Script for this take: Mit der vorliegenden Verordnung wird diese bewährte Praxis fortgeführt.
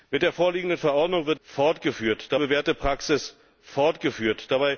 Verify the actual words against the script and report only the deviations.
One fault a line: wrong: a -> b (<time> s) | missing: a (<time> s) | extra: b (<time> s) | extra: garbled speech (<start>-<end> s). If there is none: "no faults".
wrong: diese -> fortgeführt (1.4 s)